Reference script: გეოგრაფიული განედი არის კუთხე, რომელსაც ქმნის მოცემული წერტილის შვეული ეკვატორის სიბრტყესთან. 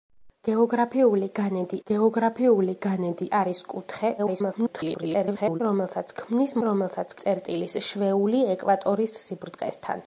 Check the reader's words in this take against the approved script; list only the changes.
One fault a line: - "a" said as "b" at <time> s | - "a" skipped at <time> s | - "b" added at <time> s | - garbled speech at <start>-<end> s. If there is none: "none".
- "გეოგრაფიული განედი" added at 1.9 s
- garbled speech at 4.2-5.6 s
- "მოცემული" said as "რომელსაც" at 6.7 s